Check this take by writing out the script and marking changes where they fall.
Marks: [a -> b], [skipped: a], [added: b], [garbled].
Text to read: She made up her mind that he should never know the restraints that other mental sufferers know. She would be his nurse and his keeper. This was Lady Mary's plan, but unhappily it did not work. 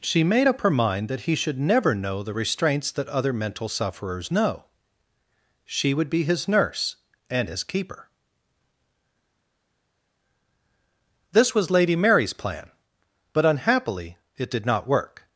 She made up her mind that he should never know the restraints that other mental sufferers know. She would be his nurse and his keeper. This was Lady Mary's plan, but unhappily it did not work.